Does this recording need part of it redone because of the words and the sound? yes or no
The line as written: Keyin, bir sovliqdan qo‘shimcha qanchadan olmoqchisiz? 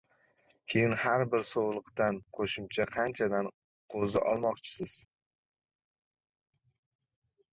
yes